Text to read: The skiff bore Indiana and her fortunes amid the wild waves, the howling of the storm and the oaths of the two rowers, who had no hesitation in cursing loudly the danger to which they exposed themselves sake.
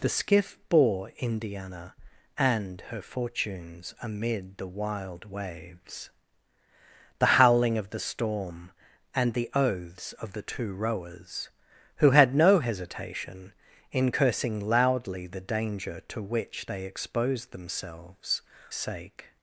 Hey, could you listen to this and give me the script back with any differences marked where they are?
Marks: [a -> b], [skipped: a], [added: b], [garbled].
The skiff bore Indiana and her fortunes amid the wild waves, the howling of the storm and the oaths of the two rowers, who had no hesitation in cursing loudly the danger to which they exposed themselves sake.